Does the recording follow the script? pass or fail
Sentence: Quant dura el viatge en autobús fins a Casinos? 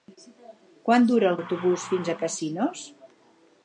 fail